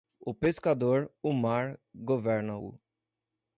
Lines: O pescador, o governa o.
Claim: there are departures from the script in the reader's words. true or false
true